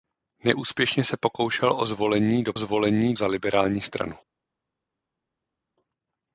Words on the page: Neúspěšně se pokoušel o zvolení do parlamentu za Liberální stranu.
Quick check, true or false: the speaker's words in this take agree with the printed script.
false